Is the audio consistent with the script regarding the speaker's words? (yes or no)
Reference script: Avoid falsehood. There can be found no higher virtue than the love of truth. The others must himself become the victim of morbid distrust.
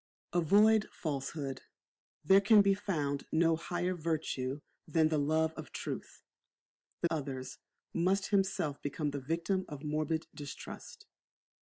yes